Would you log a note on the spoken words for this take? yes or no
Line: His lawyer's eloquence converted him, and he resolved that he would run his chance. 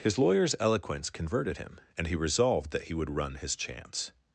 no